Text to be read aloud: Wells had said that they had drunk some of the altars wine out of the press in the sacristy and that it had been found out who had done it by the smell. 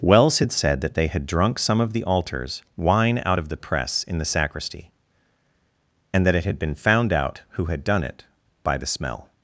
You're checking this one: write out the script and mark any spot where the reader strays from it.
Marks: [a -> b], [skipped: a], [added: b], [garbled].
Wells had said that they had drunk some of the altars wine out of the press in the sacristy and that it had been found out who had done it by the smell.